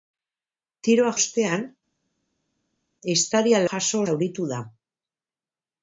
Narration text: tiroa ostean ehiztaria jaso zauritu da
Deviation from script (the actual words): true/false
false